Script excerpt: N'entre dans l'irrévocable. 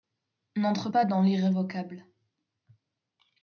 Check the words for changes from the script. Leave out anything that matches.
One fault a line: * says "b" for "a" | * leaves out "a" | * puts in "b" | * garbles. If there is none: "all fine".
* puts in "pas"